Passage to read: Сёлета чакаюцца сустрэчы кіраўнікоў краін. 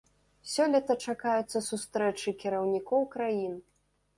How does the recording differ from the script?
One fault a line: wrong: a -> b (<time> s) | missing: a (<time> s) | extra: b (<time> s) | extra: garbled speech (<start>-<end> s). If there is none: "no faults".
no faults